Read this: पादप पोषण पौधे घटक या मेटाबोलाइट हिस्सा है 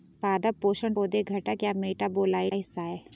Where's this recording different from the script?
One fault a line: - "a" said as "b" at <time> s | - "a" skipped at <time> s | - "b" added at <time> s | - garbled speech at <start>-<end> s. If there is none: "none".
none